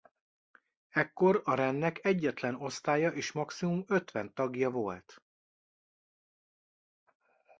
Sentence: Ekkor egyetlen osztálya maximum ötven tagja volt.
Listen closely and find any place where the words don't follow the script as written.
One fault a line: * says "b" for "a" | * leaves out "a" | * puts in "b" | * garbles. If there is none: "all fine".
* puts in "a rendnek"
* puts in "és"